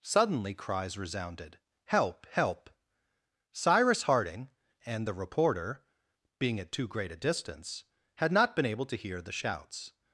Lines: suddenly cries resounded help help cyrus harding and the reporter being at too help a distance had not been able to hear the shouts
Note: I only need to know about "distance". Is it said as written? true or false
true